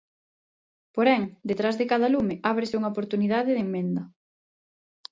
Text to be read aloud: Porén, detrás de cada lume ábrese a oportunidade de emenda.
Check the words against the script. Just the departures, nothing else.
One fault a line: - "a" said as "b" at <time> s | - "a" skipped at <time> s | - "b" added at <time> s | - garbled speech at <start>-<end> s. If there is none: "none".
- "a" said as "unha" at 2.8 s